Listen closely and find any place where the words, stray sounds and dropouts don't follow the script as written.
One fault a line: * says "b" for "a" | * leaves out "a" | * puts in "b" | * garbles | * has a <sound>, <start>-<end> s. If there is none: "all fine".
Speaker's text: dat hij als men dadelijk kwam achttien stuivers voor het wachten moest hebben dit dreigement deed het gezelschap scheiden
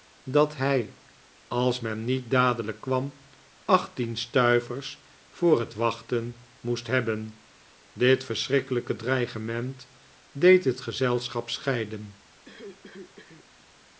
* puts in "niet"
* puts in "verschrikkelijke"
* has a cough, 12.4-13.5 s